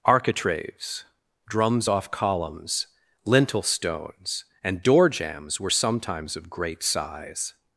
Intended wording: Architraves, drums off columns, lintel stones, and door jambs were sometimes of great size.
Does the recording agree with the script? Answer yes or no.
yes